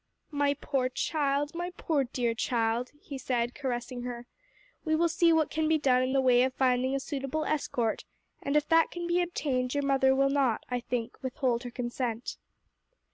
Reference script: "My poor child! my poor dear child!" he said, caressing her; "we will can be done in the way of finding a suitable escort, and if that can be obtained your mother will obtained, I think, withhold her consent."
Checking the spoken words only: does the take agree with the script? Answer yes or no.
no